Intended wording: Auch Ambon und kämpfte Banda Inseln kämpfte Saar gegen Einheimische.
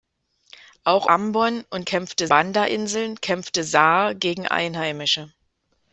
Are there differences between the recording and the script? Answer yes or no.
no